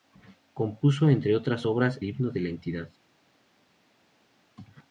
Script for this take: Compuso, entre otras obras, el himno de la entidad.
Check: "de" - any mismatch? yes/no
no